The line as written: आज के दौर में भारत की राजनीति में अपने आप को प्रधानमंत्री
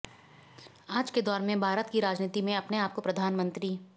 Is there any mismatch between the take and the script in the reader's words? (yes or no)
no